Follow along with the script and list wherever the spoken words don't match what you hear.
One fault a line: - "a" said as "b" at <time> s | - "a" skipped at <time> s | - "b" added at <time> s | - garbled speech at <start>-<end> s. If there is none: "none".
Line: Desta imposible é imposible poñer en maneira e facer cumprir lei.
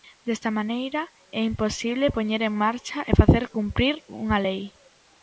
- "imposible" said as "maneira" at 0.6 s
- "maneira" said as "marcha" at 2.6 s
- "unha" added at 4.2 s